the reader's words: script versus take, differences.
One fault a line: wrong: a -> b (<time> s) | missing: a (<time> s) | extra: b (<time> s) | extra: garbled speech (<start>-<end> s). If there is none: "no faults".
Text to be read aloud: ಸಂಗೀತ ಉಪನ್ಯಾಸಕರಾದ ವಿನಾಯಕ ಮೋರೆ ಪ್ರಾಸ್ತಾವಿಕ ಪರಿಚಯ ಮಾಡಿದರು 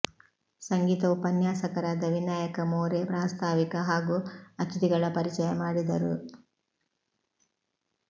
extra: ಹಾಗೂ ಅತಿಥಿಗಳ (3.9 s)